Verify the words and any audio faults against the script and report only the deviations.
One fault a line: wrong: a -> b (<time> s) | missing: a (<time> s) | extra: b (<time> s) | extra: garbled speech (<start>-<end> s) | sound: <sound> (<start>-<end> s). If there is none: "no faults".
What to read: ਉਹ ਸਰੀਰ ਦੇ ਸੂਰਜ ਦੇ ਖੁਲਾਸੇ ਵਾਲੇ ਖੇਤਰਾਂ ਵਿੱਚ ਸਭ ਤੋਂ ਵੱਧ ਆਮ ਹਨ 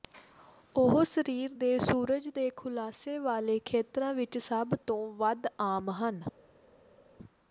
no faults